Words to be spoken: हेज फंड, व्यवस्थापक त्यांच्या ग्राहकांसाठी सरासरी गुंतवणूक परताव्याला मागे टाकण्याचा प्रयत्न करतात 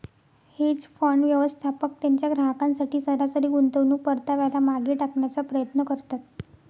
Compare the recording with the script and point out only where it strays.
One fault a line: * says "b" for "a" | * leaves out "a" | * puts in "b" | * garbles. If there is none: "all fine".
all fine